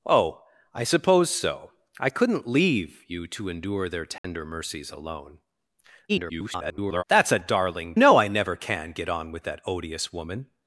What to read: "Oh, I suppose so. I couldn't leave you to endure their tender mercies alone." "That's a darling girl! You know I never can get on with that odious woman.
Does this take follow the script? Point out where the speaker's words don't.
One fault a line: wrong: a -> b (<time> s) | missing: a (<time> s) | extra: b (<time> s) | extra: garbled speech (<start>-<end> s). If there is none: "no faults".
extra: garbled speech (6.1-7.0 s)
missing: girl You (7.9 s)